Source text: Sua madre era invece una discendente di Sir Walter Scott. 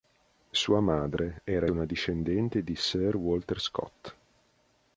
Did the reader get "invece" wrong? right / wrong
wrong